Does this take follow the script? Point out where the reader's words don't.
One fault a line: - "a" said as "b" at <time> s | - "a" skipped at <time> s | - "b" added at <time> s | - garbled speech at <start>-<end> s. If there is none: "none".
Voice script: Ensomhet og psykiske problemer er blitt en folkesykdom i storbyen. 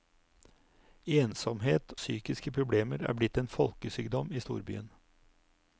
- "og" skipped at 1.9 s